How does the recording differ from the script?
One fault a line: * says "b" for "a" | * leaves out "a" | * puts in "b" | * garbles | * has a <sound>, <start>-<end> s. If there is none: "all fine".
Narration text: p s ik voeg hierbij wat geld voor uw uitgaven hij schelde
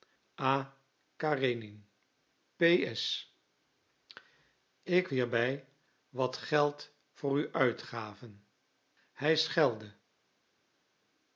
* leaves out "voeg"